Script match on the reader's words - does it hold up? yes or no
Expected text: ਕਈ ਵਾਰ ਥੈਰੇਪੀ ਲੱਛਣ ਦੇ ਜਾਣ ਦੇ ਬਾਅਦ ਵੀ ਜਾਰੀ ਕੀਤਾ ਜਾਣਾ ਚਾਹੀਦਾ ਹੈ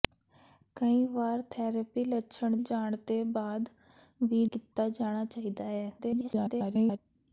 no